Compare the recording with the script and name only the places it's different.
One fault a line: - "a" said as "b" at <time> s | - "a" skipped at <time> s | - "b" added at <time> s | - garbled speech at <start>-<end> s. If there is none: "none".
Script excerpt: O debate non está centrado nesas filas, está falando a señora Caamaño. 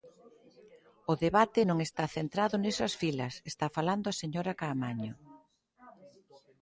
none